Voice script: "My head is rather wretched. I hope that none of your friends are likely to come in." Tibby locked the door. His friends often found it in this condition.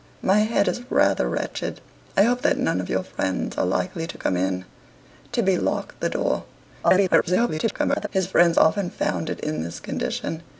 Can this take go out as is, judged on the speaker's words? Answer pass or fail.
fail